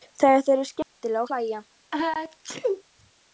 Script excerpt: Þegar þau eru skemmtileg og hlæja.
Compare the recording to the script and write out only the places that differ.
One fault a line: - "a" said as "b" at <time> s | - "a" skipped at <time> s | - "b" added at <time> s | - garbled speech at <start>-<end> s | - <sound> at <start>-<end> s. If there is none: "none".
- dropout at 0.8-1.0 s
- sneeze at 1.9-2.8 s